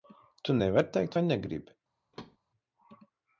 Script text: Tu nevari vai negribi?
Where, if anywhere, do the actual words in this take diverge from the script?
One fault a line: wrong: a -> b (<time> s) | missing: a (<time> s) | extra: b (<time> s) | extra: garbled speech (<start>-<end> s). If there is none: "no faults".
extra: teikt (1.0 s)